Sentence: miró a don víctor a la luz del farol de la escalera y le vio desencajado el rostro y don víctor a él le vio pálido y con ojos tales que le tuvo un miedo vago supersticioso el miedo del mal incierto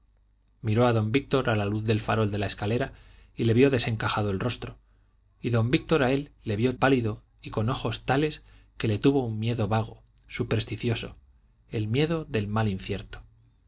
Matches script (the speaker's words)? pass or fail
pass